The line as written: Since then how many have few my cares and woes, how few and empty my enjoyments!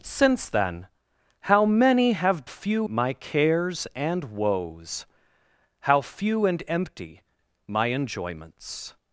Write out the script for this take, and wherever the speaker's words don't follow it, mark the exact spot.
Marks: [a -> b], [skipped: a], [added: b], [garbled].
Since then how many have few my cares and woes, how few and empty my enjoyments!